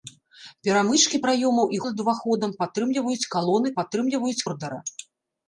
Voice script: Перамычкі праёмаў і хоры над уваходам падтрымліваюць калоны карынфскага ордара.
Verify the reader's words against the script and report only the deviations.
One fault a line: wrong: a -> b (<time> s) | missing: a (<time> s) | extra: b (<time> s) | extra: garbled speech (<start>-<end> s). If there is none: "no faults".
missing: хоры (1.8 s)
wrong: карынфскага -> падтрымліваюць (3.8 s)